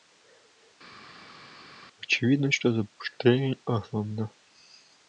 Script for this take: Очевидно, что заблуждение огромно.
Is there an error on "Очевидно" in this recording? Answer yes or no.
no